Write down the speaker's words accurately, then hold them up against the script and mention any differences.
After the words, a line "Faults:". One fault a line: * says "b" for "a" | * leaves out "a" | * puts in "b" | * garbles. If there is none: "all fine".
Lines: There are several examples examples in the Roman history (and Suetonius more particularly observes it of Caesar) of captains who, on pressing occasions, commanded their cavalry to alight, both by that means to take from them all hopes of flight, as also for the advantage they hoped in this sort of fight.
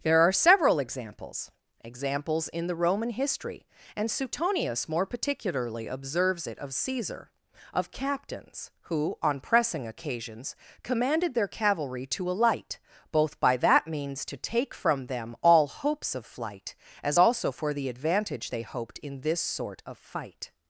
There are several examples examples in the Roman history (and Suetonius more particularly observes it of Caesar) of captains who, on pressing occasions, commanded their cavalry to alight, both by that means to take from them all hopes of flight, as also for the advantage they hoped in this sort of fight.
Faults:
all fine